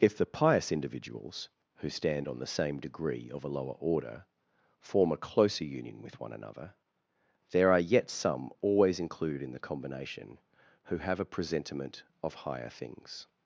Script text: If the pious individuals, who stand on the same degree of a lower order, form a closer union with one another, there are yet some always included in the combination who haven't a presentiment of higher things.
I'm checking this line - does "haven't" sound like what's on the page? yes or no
no